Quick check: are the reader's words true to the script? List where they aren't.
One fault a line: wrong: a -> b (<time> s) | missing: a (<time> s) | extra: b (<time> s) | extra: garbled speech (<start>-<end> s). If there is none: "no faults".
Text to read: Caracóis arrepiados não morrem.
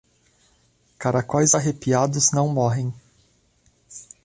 no faults